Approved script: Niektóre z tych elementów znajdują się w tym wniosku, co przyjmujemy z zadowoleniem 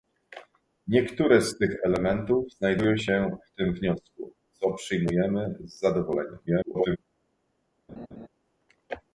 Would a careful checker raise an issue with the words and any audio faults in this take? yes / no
yes